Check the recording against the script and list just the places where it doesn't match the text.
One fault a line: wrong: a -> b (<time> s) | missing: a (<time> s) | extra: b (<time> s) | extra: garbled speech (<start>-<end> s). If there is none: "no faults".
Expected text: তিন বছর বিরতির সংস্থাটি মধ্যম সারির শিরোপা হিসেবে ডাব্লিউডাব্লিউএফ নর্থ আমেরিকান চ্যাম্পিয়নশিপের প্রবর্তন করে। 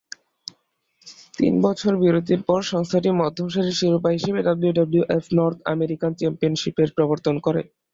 extra: পর (2.4 s)